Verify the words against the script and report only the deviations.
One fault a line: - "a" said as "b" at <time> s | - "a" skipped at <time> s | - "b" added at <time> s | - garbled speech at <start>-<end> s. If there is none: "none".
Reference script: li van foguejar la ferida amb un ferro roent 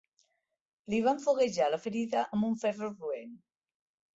none